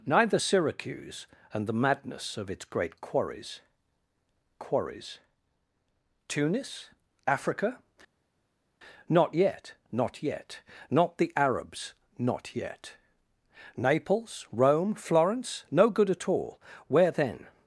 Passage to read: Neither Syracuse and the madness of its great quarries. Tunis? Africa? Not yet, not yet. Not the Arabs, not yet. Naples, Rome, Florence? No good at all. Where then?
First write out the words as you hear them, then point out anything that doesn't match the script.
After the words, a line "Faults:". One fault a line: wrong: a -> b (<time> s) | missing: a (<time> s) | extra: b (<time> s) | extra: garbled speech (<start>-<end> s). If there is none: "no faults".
Neither Syracuse and the madness of its great quarries quarries. Tunis? Africa? Not yet, not yet. Not the Arabs, not yet. Naples, Rome, Florence? No good at all. Where then?
Faults:
extra: quarries (4.6 s)